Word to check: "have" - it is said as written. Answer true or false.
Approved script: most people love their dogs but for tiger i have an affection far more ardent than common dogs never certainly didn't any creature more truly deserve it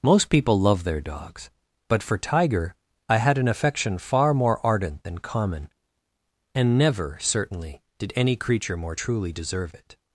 false